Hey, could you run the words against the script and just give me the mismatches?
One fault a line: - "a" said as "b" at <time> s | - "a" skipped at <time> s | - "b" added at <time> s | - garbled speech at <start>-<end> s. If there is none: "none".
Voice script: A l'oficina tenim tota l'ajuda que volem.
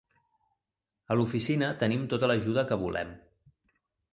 none